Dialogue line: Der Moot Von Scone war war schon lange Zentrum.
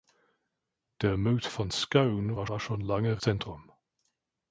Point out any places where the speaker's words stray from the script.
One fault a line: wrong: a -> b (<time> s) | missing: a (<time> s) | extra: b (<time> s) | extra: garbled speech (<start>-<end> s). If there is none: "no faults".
no faults